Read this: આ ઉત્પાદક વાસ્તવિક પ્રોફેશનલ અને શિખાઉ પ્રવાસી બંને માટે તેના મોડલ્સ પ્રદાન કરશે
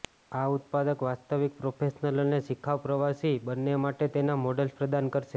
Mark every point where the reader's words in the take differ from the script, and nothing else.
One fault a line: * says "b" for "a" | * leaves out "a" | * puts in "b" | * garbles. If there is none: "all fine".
all fine